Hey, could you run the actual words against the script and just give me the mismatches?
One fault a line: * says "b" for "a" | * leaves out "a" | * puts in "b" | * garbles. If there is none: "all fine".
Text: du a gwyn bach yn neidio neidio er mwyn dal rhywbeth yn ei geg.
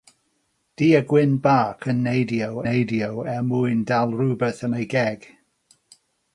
all fine